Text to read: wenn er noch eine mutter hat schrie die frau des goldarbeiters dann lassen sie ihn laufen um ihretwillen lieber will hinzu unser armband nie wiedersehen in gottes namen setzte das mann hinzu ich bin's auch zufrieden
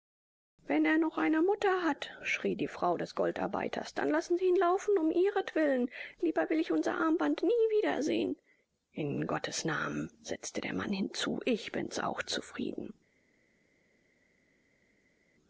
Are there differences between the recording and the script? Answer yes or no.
yes